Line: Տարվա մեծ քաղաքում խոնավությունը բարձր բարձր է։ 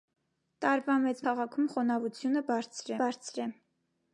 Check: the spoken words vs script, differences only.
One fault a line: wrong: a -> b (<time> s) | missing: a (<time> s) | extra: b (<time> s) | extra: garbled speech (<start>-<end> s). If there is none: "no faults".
no faults